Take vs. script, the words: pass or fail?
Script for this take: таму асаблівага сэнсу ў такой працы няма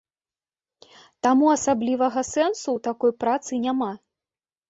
pass